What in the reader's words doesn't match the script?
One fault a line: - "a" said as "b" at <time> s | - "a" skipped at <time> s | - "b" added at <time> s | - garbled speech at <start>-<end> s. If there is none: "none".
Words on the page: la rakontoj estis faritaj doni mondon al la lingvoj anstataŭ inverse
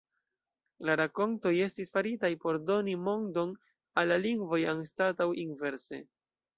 - "por" added at 2.5 s